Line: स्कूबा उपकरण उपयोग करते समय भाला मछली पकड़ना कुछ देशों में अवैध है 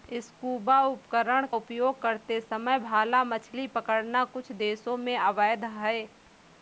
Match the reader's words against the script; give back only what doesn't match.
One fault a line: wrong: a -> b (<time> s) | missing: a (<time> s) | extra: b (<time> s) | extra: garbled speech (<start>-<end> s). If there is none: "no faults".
no faults